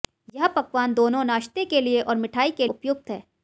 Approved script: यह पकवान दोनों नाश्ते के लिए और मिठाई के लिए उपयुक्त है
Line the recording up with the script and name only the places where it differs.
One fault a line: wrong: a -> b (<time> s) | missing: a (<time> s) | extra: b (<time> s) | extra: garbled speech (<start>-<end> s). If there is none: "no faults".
missing: लिए (2.7 s)